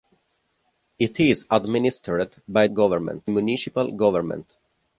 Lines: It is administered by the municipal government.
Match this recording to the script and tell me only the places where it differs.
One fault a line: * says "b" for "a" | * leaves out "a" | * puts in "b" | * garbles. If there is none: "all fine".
* says "government" for "the"